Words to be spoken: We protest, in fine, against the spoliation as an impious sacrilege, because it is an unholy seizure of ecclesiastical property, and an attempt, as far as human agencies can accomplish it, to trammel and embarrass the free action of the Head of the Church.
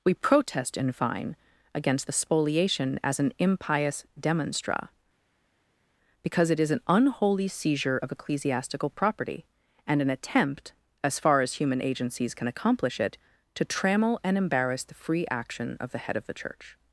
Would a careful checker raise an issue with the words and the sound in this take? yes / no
yes